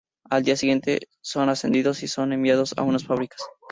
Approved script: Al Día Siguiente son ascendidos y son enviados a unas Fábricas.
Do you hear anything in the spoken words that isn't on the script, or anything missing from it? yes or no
no